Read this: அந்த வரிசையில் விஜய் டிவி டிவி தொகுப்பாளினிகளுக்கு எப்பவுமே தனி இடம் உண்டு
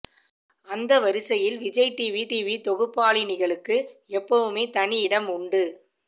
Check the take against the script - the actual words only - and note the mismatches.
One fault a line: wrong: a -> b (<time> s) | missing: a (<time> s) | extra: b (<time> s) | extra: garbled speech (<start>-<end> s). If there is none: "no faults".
no faults